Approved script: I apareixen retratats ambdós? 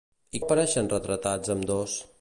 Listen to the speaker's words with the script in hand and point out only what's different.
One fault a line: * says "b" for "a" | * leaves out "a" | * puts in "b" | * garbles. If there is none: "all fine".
all fine